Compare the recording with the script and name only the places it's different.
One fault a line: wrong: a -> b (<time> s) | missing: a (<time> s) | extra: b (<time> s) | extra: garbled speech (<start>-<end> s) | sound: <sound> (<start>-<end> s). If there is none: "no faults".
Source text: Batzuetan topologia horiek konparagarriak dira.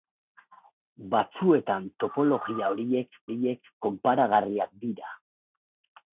extra: horiek (3.3 s)